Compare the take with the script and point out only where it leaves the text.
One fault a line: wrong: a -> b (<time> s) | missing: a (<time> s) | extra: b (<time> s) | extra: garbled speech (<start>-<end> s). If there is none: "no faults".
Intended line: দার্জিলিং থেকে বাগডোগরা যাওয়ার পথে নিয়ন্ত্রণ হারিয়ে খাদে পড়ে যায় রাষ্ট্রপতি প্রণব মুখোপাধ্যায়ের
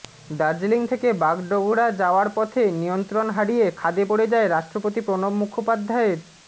no faults